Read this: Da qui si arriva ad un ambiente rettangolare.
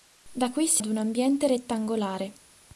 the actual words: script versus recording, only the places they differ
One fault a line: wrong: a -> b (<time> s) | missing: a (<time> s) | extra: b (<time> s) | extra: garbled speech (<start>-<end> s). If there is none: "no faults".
missing: arriva (0.8 s)